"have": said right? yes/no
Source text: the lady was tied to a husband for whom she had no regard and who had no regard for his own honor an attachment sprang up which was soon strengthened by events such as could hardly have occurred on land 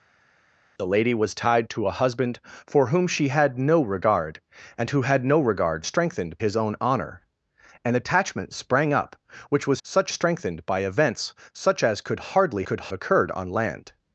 no